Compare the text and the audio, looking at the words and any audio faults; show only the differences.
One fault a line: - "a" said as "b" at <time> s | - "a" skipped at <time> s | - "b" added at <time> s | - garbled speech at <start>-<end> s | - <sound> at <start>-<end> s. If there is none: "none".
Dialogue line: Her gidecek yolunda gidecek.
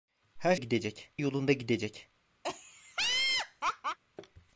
- laugh at 2.4-4.0 s